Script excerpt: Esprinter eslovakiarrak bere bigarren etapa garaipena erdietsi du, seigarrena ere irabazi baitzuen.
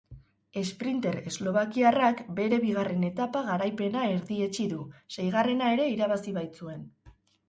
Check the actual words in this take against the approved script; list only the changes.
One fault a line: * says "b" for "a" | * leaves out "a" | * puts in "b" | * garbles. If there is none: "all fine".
all fine